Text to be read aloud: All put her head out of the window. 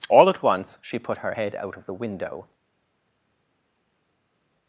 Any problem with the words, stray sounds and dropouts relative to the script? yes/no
yes